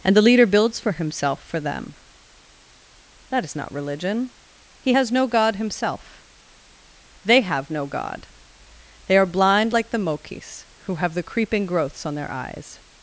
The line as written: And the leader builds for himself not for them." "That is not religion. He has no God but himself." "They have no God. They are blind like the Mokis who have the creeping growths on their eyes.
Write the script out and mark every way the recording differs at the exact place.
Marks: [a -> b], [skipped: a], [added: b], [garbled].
And the leader builds for himself [skipped: not] for them." "That is not religion. He has no God [skipped: but] himself." "They have no God. They are blind like the Mokis who have the creeping growths on their eyes.